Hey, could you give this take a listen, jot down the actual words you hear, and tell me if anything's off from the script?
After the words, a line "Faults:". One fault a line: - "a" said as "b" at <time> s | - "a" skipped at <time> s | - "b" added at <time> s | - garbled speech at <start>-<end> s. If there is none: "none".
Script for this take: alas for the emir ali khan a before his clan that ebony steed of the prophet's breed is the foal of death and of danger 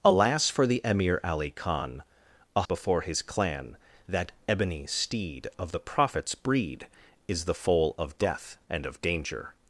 alas for the emir ali khan a before his clan that ebony steed of the prophet's breed is the foal of death and of danger
Faults:
none